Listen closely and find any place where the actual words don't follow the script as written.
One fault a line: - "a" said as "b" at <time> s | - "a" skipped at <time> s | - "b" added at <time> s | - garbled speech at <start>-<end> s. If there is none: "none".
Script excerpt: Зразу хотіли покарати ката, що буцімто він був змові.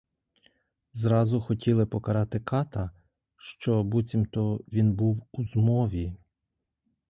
- "у" added at 5.3 s